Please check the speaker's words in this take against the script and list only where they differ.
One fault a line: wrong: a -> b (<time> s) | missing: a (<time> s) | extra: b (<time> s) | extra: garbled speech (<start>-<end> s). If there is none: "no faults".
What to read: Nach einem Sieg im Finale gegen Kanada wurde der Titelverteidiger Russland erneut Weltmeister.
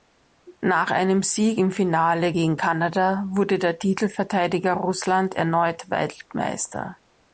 no faults